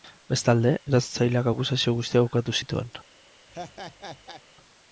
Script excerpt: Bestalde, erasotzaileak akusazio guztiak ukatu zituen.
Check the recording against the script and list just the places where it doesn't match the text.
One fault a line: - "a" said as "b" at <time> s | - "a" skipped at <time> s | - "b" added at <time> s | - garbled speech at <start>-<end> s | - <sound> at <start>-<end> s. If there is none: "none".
- laugh at 3.5-4.4 s